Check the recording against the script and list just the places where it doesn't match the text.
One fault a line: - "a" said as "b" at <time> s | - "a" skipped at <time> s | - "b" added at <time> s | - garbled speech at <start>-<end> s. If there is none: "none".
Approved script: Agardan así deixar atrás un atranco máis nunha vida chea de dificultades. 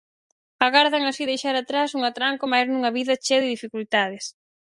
none